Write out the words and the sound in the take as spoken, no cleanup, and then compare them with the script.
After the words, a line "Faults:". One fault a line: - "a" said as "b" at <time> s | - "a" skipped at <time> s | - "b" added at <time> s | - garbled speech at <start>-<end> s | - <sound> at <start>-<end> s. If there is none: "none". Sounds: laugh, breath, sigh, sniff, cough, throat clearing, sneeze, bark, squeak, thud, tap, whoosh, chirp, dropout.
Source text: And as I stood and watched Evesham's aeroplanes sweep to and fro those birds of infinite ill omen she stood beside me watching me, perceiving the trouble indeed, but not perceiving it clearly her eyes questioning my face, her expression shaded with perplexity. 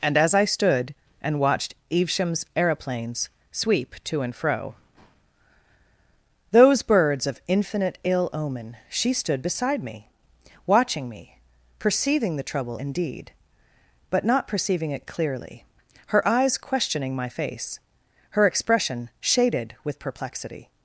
And as I stood and watched Evesham's aeroplanes sweep to and fro those birds of infinite ill omen she stood beside me watching me, perceiving the trouble indeed, but not perceiving it clearly her eyes questioning my face, her expression shaded with perplexity.
Faults:
none